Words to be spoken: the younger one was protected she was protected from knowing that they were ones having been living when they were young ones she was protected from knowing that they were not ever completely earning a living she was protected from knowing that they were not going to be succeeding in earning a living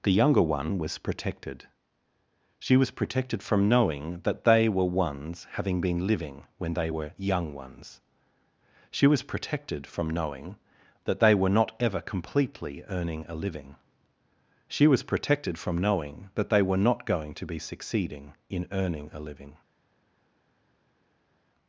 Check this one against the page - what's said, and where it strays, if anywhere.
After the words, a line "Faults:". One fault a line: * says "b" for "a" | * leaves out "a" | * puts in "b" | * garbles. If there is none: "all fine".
the younger one was protected she was protected from knowing that they were ones having been living when they were young ones she was protected from knowing that they were not ever completely earning a living she was protected from knowing that they were not going to be succeeding in earning a living
Faults:
all fine